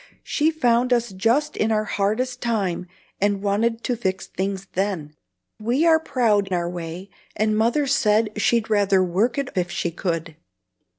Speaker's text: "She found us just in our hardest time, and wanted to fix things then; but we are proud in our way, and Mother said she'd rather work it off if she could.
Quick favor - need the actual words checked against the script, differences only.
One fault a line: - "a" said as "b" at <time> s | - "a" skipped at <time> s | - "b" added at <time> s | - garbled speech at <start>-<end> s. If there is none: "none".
- "but" skipped at 5.1 s
- "in" skipped at 6.5 s
- "off" skipped at 9.5 s